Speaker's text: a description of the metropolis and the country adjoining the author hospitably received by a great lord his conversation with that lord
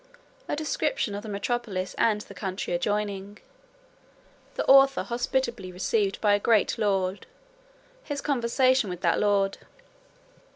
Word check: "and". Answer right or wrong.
right